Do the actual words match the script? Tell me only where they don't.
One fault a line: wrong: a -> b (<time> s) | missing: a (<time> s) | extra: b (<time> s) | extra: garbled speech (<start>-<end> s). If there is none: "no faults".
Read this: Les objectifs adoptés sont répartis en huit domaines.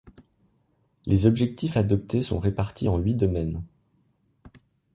no faults